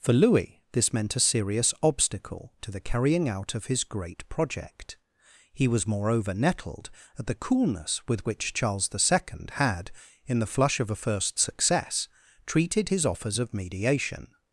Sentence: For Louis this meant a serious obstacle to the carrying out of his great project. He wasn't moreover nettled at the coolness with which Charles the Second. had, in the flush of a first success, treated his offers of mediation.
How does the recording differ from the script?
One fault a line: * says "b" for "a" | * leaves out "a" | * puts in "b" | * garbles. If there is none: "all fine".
* says "was" for "wasn't"